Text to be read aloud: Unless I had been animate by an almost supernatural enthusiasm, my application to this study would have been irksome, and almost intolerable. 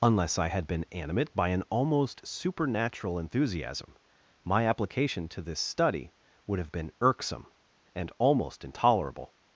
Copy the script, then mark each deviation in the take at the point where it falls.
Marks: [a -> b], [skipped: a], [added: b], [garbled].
Unless I had been animate by an almost supernatural enthusiasm, my application to this study would have been irksome, and almost intolerable.